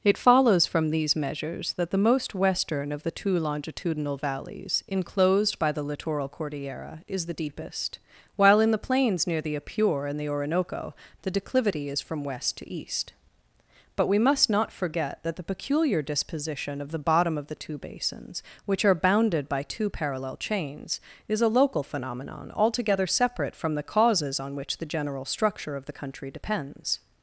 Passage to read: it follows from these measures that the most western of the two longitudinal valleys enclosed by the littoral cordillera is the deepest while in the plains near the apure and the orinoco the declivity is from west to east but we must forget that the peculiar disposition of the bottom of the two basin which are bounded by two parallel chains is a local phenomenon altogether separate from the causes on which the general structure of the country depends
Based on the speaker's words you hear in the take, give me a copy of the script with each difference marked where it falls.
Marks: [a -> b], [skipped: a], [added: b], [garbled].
it follows from these measures that the most western of the two longitudinal valleys enclosed by the littoral cordillera is the deepest while in the plains near the apure and the orinoco the declivity is from west to east but we must [added: not] forget that the peculiar disposition of the bottom of the two [basin -> basins] which are bounded by two parallel chains is a local phenomenon altogether separate from the causes on which the general structure of the country depends